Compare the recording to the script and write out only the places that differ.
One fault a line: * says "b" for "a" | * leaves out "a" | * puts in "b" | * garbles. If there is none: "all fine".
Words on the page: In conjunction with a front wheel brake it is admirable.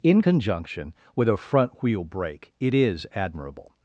all fine